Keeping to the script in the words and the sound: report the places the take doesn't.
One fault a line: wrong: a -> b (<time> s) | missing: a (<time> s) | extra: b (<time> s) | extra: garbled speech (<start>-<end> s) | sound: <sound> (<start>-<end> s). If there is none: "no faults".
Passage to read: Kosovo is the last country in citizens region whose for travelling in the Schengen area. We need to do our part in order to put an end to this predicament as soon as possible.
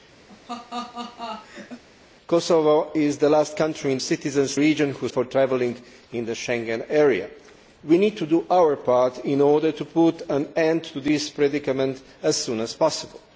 sound: laugh (0.3-1.8 s)